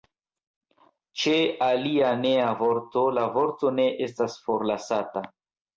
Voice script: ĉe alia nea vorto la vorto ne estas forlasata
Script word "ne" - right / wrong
right